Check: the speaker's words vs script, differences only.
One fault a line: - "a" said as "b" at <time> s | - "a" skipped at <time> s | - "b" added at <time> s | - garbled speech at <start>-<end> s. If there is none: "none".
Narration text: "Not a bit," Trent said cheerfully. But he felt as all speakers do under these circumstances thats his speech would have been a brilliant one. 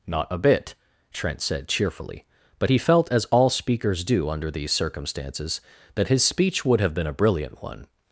- "thats" said as "that" at 5.9 s